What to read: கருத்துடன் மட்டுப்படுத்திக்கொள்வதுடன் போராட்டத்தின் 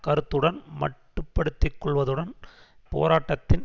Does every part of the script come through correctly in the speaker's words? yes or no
yes